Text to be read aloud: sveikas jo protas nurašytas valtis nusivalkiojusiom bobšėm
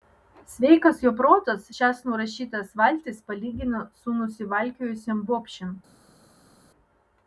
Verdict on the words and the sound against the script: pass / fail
fail